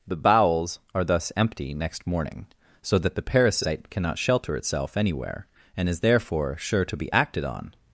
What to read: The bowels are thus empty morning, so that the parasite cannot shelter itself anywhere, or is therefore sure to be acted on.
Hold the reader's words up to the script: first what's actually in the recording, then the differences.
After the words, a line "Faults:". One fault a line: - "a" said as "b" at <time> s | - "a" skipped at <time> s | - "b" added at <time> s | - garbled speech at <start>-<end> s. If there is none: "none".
The bowels are thus empty next morning, so that the parasite cannot shelter itself anywhere, and is therefore sure to be acted on.
Faults:
- "next" added at 1.8 s
- "or" said as "and" at 5.8 s